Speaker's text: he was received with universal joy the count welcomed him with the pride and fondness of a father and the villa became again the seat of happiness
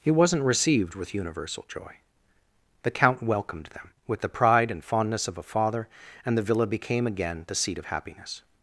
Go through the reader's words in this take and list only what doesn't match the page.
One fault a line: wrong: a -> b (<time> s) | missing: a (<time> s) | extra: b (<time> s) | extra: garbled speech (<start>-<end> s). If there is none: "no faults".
wrong: was -> wasn't (0.1 s)
wrong: him -> them (3.7 s)